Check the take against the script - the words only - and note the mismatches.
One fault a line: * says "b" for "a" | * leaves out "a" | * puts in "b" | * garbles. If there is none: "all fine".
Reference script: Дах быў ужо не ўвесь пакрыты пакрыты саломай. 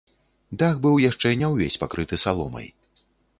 * says "яшчэ" for "ужо"
* leaves out "пакрыты"